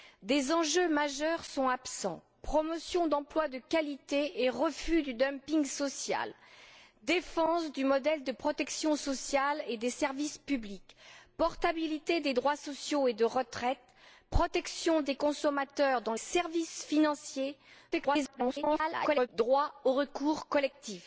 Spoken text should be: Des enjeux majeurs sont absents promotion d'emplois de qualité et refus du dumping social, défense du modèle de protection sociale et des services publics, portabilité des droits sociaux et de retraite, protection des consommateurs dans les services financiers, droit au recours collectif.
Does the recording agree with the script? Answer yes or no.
no